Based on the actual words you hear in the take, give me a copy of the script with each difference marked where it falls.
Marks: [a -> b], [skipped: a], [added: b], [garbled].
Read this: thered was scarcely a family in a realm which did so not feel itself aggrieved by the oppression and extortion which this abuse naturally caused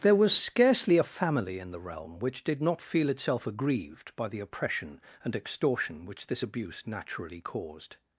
[thered -> there] was scarcely a family in [a -> the] realm which did [skipped: so] not feel itself aggrieved by the oppression and extortion which this abuse naturally caused